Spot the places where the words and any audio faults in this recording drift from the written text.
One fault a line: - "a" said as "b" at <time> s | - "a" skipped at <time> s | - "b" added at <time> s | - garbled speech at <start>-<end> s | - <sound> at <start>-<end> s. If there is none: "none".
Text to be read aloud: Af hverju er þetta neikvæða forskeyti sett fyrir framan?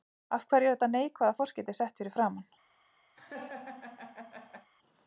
- laugh at 3.1-4.7 s